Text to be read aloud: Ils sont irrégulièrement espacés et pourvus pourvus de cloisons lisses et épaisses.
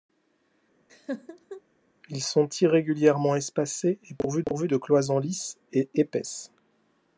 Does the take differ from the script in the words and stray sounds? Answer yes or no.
yes